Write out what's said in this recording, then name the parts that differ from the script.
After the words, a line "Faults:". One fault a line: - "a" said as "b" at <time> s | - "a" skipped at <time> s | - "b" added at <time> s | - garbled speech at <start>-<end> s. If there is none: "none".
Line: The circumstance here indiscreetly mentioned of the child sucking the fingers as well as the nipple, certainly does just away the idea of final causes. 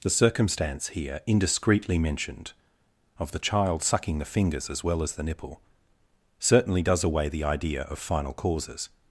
The circumstance here indiscreetly mentioned of the child sucking the fingers as well as the nipple, certainly does away the idea of final causes.
Faults:
- "just" skipped at 7.0 s